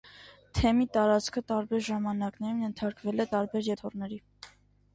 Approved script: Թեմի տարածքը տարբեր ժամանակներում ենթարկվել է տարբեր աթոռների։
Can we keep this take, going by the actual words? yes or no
yes